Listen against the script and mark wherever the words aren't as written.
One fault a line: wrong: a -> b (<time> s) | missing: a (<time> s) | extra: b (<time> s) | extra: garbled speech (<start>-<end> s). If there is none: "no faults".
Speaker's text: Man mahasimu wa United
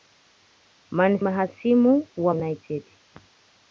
no faults